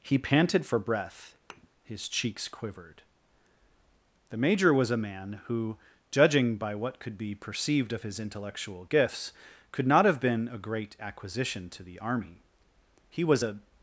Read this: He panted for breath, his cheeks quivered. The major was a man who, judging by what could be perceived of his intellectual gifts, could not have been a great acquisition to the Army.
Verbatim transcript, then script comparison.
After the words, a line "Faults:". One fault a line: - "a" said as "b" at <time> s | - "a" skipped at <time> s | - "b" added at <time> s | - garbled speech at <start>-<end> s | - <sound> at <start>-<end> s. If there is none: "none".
He panted for breath, his cheeks quivered. The major was a man who, judging by what could be perceived of his intellectual gifts, could not have been a great acquisition to the Army. He was a
Faults:
- thud at 1.5-1.7 s
- "He was a" added at 13.1 s